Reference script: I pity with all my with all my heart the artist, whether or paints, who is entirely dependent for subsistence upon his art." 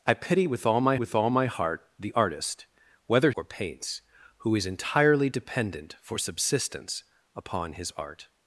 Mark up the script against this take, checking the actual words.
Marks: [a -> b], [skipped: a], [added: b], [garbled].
I pity with all my with all my heart the artist, whether or paints, who is entirely dependent for subsistence upon his art."